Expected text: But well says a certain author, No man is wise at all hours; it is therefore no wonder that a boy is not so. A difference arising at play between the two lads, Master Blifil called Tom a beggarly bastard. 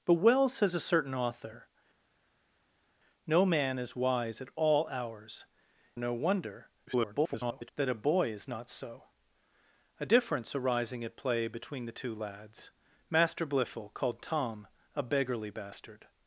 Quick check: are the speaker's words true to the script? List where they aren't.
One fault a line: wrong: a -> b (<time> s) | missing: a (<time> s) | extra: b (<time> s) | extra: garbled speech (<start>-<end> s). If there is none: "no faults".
missing: it is therefore (5.4 s)
extra: garbled speech (6.9-7.7 s)